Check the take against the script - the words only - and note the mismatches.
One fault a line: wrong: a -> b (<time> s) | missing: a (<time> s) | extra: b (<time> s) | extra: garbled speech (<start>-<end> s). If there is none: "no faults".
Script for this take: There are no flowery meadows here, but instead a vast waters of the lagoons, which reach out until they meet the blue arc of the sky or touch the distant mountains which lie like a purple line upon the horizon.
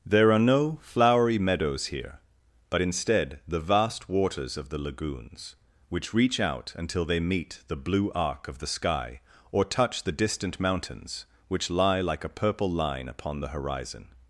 wrong: a -> the (3.5 s)